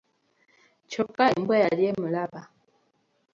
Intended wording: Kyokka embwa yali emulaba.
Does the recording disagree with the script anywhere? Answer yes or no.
no